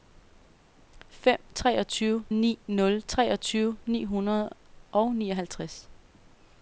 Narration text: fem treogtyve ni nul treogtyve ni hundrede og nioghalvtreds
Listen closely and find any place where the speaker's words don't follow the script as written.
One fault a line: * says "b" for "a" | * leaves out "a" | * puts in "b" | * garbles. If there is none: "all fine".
all fine